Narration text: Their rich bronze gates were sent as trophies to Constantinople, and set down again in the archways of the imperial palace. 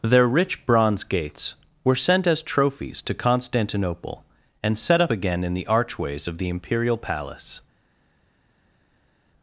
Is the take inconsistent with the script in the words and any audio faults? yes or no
yes